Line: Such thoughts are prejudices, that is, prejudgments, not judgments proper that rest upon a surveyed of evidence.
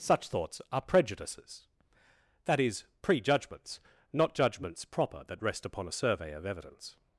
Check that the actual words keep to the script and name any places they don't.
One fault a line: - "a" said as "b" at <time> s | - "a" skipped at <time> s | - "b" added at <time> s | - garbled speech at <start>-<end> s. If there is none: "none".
- "surveyed" said as "survey" at 5.9 s